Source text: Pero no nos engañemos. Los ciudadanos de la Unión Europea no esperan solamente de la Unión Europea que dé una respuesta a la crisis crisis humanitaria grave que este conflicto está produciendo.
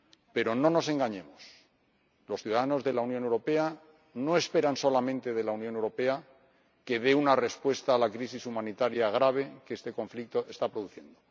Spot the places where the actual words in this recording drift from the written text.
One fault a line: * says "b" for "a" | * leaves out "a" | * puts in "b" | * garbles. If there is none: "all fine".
* leaves out "crisis"